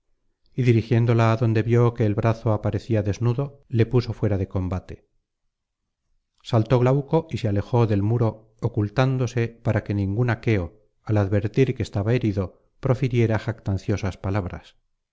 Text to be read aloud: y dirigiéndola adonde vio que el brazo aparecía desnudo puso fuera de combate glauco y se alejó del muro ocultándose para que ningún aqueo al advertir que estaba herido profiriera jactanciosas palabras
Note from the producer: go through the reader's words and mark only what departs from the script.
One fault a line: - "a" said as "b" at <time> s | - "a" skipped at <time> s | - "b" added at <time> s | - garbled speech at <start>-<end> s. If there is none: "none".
- "le" added at 3.7 s
- "saltó" added at 6.4 s